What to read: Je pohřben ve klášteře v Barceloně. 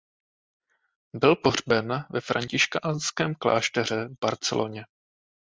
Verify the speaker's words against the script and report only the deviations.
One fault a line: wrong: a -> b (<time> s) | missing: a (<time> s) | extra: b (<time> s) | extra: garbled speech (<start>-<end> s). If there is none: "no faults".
wrong: Je -> Byl (1.1 s)
extra: františkánském (2.2 s)